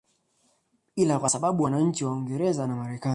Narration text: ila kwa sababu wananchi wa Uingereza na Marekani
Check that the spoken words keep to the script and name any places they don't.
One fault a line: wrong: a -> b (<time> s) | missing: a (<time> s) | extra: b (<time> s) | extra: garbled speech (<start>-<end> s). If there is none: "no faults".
no faults